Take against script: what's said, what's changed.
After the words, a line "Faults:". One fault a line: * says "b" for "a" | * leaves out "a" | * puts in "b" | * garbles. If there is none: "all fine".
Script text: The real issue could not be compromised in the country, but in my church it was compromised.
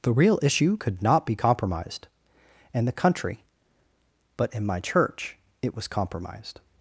The real issue could not be compromised and the country, but in my church it was compromised.
Faults:
* says "and" for "in"